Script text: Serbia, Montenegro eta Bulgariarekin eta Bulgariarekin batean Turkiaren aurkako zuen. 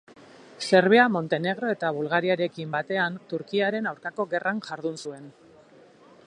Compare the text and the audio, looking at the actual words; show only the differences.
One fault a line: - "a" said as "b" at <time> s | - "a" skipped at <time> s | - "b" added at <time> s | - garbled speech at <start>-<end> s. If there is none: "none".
- "eta Bulgariarekin" skipped at 2.7 s
- "gerran jardun" added at 4.4 s